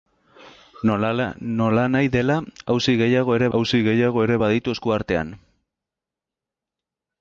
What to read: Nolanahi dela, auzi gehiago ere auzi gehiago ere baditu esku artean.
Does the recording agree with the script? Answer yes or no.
yes